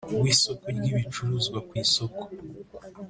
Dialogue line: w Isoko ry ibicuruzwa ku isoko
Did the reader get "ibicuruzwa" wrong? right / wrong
right